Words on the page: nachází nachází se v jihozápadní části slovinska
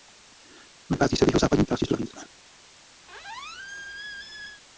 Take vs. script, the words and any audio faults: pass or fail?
fail